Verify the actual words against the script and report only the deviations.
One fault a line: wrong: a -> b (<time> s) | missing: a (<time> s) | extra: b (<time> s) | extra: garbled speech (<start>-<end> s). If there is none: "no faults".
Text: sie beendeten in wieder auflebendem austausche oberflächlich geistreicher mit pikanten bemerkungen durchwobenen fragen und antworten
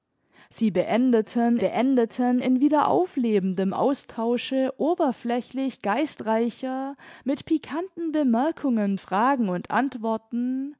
extra: beendeten (1.6 s)
missing: durchwobenen (9.0 s)